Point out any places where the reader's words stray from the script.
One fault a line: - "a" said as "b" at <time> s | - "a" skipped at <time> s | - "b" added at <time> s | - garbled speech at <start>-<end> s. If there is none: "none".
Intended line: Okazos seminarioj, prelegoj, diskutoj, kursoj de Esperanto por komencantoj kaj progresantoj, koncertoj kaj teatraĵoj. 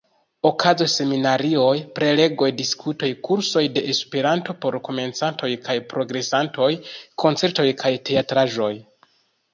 none